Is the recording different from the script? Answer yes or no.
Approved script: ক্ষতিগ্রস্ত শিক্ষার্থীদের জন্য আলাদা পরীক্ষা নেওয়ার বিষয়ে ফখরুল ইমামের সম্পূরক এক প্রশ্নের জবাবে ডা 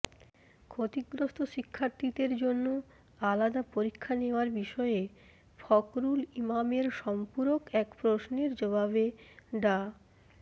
no